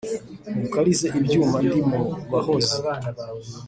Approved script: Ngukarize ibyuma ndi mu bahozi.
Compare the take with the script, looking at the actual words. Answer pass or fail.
pass